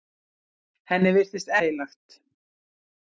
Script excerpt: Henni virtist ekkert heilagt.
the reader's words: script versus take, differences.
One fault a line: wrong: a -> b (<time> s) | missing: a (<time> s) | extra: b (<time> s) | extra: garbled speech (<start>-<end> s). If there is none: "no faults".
missing: ekkert (1.5 s)